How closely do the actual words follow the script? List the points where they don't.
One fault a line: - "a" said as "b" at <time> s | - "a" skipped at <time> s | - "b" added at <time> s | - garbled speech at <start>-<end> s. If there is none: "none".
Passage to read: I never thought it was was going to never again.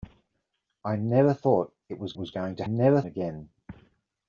none